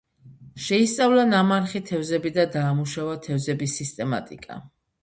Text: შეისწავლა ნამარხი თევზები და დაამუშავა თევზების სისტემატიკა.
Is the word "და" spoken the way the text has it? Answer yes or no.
yes